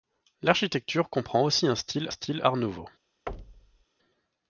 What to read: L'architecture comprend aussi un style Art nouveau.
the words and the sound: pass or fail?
fail